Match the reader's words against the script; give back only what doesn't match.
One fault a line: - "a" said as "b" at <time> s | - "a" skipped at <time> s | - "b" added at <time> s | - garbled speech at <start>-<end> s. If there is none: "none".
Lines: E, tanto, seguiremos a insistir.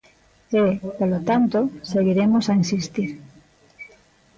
- "polo" added at 1.0 s